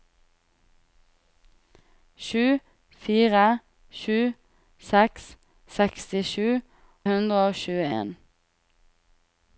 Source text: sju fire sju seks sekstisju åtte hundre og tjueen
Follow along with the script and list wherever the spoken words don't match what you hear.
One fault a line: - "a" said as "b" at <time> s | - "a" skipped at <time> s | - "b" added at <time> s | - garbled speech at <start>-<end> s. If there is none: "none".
- "åtte" skipped at 6.5 s